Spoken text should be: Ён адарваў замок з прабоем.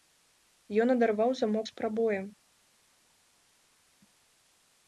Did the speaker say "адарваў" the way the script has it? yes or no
yes